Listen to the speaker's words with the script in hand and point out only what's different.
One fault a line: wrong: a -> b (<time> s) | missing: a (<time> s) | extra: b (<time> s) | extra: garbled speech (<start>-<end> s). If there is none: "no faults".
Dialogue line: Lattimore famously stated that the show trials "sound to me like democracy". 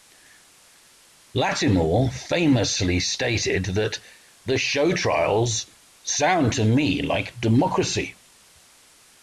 no faults